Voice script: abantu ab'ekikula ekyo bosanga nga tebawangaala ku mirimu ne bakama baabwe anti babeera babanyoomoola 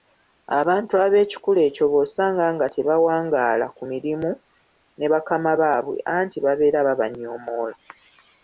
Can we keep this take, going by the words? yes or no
yes